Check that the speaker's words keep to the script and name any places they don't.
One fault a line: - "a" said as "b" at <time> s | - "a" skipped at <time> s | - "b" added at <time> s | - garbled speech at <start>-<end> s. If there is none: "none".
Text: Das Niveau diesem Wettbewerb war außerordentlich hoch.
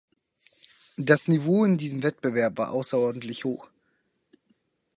- "in" added at 1.6 s